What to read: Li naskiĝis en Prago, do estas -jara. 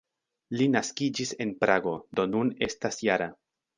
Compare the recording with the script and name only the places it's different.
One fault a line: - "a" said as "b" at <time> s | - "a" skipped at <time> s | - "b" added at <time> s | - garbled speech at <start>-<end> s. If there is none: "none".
- "nun" added at 2.3 s